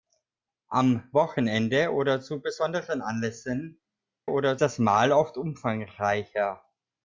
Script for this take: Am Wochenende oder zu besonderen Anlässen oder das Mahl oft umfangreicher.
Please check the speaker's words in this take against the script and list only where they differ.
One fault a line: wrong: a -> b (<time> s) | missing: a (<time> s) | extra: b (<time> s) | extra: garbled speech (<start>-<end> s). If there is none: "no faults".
no faults